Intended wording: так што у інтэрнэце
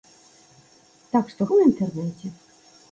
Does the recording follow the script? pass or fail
pass